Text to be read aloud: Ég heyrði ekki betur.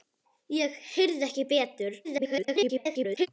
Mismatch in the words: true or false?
true